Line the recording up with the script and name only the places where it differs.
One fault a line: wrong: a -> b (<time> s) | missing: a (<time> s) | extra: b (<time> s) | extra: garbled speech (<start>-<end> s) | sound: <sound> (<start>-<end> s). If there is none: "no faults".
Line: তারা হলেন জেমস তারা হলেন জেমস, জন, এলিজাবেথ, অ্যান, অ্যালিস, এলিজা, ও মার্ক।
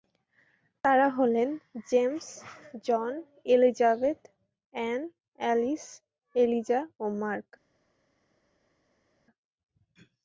missing: তারা হলেন জেমস (2.3 s)